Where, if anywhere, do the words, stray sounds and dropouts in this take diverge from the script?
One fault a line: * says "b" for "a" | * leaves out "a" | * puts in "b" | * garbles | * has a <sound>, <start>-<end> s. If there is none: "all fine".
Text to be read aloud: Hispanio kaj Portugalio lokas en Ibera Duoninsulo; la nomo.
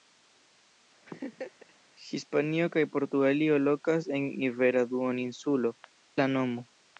* has a laugh, 1.1-1.7 s